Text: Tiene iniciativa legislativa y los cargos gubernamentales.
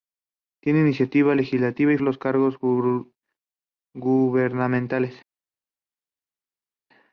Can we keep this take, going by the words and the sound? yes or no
yes